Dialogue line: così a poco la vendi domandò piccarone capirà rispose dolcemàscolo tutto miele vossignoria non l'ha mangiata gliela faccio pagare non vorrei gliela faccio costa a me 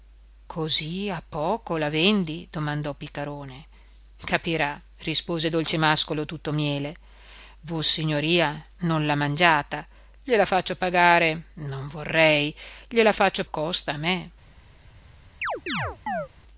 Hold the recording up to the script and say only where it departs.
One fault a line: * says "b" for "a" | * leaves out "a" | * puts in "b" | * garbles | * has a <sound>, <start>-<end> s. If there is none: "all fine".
* has a chirp, 15.4-16.3 s